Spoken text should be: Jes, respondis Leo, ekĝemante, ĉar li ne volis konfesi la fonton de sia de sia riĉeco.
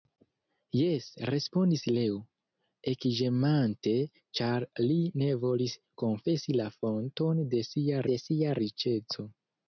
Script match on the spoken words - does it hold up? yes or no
yes